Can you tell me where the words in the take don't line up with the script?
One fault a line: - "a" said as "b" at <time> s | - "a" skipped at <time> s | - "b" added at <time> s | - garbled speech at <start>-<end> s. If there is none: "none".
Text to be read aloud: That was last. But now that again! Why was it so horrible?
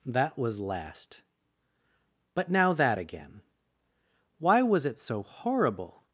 none